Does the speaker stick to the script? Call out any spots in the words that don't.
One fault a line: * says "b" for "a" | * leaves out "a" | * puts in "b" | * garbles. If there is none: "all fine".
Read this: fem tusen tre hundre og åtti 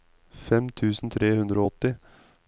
all fine